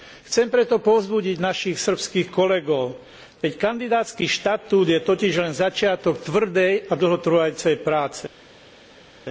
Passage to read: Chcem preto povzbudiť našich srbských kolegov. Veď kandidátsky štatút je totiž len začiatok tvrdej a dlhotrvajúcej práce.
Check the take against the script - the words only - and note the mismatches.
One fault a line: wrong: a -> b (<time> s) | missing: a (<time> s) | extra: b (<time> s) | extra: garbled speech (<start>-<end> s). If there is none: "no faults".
no faults